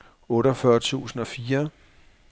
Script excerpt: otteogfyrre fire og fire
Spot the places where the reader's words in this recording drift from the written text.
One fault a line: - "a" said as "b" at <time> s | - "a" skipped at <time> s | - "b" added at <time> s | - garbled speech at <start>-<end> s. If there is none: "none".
- "fire" said as "tusind" at 0.8 s